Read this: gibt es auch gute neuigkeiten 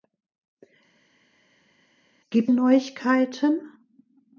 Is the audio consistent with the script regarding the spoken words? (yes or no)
no